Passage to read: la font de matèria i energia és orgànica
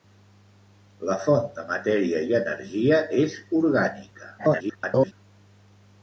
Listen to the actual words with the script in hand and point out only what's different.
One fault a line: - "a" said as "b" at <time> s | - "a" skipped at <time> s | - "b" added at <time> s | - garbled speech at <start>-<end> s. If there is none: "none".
- garbled speech at 4.4-5.1 s